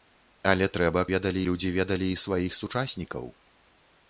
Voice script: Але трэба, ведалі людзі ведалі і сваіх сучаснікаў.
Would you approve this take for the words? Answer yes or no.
yes